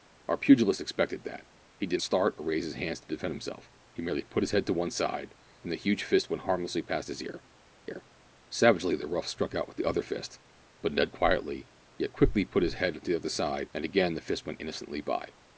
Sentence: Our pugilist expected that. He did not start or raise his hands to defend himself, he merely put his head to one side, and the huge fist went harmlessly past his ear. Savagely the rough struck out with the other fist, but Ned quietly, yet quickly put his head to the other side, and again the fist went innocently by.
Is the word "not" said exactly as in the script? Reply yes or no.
no